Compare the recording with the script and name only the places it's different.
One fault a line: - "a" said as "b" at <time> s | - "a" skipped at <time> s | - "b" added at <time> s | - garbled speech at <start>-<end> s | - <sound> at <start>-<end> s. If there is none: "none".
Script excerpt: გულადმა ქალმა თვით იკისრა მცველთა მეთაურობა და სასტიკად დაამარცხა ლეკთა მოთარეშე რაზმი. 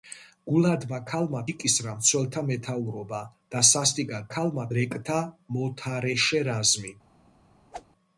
- "თვით" skipped at 1.4 s
- "დაამარცხა" said as "ქალმა" at 4.3 s
- whoosh at 7.7-7.9 s